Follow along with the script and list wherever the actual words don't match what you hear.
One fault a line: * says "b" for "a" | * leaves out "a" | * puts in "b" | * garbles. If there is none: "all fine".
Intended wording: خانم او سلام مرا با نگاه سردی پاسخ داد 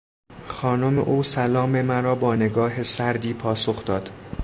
all fine